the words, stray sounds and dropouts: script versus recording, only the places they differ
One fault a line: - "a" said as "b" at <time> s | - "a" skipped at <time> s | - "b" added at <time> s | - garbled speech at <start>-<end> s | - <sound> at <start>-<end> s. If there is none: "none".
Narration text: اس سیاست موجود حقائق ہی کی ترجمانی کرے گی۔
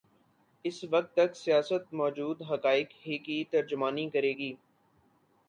- "وقت تک" added at 0.9 s